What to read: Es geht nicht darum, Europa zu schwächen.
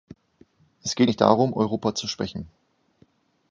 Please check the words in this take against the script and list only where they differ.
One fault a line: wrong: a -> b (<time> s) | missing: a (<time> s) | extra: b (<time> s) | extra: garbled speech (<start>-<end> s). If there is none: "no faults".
no faults